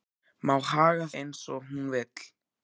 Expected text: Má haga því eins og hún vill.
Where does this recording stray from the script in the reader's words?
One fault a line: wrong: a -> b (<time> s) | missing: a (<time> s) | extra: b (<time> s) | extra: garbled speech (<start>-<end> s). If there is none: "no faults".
missing: því (1.1 s)